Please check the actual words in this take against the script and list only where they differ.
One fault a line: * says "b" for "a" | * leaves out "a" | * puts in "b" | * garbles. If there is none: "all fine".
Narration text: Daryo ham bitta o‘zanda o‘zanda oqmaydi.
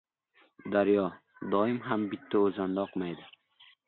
* puts in "doim"
* leaves out "o‘zanda"